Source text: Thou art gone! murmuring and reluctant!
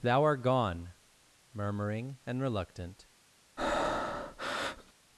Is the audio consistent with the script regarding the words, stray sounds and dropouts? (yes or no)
no